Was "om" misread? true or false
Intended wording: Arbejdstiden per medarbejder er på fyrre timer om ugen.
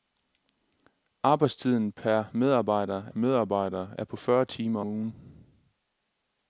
true